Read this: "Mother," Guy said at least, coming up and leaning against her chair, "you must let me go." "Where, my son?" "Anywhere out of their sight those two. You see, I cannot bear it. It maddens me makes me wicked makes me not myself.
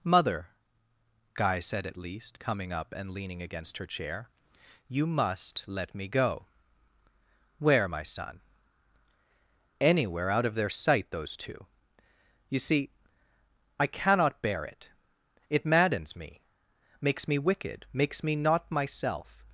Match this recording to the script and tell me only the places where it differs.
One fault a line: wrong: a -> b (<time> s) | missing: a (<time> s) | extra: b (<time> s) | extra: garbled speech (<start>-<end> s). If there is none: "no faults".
no faults